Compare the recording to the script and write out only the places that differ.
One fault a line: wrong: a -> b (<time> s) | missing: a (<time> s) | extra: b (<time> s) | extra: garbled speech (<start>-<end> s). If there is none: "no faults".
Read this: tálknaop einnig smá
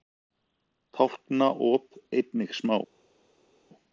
no faults